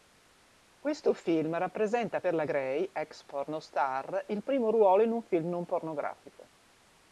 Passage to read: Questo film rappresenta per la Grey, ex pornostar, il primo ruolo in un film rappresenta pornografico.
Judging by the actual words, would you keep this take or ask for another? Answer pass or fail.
fail